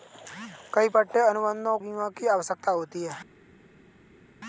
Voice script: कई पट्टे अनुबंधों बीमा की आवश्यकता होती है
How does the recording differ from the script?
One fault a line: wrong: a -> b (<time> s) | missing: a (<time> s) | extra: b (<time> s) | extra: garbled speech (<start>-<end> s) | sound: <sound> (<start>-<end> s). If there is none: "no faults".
no faults